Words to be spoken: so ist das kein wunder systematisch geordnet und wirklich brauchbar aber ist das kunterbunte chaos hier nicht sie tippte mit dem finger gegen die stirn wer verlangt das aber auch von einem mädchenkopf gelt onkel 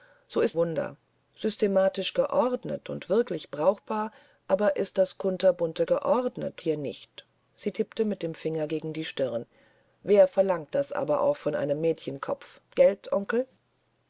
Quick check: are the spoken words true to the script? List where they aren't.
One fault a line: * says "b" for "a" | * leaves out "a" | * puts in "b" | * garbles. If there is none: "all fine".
* leaves out "das kein"
* says "geordnet" for "chaos"